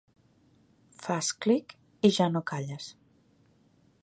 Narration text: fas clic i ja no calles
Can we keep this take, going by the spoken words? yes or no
yes